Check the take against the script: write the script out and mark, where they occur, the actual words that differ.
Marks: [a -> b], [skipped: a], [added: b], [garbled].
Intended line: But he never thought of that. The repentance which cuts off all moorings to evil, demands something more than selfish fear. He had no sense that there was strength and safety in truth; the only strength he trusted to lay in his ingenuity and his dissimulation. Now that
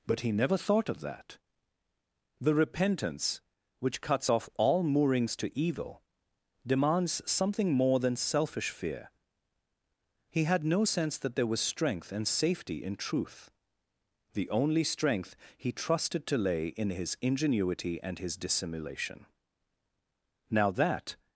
But he never thought of that. The repentance which cuts off all moorings to evil, demands something more than selfish fear. He had no sense that there was strength and safety in truth; the only strength he trusted to lay in his ingenuity and his dissimulation. Now that